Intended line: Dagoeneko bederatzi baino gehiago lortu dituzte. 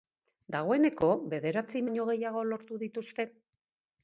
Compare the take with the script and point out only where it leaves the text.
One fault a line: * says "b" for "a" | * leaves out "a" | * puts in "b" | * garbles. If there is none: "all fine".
all fine